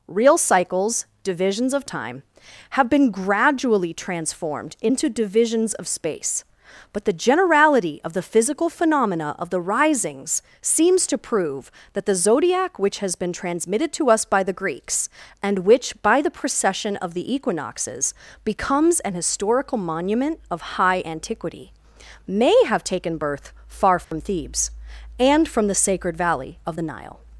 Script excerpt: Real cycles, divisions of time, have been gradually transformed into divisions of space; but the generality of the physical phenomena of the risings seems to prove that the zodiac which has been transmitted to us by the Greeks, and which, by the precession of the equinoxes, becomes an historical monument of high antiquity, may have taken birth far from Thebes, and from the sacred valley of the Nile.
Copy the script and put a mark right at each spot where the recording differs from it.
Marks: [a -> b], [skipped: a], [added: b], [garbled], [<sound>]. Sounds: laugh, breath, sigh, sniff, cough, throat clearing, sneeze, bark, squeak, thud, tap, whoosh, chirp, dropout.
Real cycles, divisions of time, have been gradually transformed into divisions of space; but the generality of the physical phenomena of the risings seems to prove that the zodiac which has been transmitted to us by the Greeks, and which, by the precession of the equinoxes, becomes an historical monument of high antiquity, may have taken birth far from [dropout] Thebes, and from the sacred valley of the Nile.